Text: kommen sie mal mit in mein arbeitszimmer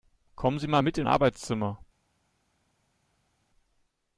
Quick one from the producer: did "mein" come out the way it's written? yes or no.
no